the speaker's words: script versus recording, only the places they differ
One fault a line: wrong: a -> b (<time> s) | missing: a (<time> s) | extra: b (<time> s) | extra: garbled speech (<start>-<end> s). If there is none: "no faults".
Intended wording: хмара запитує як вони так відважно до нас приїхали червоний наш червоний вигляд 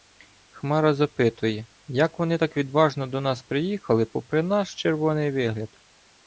wrong: червоний -> попри (4.1 s)